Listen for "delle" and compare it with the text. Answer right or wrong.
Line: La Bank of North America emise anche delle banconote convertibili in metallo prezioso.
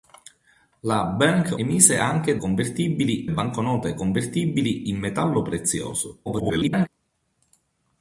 wrong